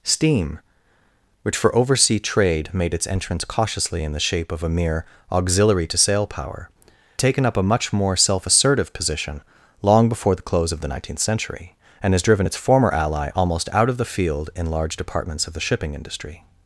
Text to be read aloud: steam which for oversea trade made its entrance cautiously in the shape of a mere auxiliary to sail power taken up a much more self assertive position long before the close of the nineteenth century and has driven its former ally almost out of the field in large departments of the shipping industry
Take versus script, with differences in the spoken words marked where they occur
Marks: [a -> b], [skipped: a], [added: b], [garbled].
steam which for oversea trade made its entrance cautiously in the shape of a mere auxiliary to sail power taken up a much more self assertive position long before the close of the nineteenth century and has driven its former ally almost out of the field in large departments of the shipping industry